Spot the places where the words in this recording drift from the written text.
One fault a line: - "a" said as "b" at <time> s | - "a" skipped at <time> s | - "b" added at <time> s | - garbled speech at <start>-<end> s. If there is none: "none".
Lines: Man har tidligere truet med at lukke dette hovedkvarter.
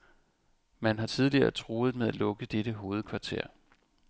none